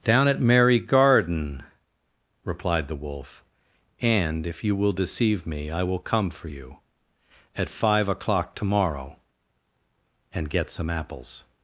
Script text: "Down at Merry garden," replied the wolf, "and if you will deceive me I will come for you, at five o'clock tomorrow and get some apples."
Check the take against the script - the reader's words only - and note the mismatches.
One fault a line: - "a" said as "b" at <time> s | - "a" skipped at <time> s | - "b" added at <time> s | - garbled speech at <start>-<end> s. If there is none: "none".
none